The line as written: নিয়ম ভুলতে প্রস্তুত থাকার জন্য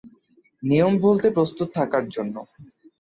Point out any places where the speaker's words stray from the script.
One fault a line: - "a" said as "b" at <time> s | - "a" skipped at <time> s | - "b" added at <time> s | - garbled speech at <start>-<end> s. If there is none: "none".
none